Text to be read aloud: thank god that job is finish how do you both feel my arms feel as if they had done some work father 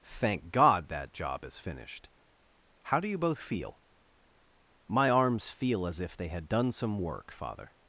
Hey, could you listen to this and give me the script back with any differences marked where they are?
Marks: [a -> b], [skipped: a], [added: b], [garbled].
thank god that job is [finish -> finished] how do you both feel my arms feel as if they had done some work father